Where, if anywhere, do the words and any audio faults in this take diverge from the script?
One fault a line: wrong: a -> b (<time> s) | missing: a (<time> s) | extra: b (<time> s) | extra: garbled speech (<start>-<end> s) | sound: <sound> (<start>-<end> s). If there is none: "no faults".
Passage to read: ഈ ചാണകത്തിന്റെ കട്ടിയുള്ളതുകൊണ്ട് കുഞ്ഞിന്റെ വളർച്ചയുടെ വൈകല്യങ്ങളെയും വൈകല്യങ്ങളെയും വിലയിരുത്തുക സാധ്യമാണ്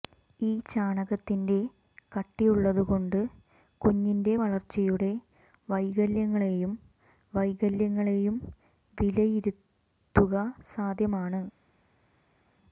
no faults